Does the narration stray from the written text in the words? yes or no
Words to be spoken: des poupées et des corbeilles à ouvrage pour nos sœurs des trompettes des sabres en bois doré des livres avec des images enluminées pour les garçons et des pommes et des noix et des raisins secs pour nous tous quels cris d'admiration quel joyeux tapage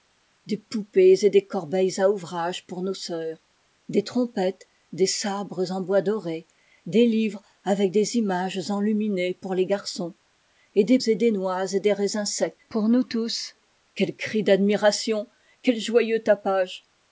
yes